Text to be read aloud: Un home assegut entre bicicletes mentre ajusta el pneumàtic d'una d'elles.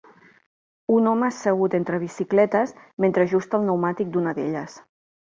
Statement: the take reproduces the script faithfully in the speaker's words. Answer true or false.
true